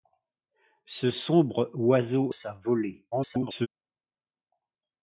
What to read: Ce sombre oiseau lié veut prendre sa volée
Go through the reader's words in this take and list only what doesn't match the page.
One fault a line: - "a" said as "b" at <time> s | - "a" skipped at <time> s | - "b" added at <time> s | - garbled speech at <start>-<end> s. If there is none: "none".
- "lié veut prendre" skipped at 2.3 s
- garbled speech at 3.1-3.7 s